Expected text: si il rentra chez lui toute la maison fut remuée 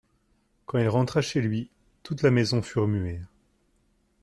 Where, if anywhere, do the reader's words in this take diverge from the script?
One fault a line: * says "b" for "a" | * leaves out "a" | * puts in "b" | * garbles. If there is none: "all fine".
* says "quand" for "si"